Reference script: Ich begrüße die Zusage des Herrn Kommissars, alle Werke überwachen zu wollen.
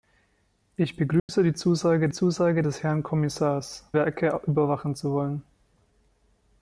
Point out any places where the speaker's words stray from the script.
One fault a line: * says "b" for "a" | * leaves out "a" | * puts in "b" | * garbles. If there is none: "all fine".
* puts in "Zusage"
* leaves out "alle"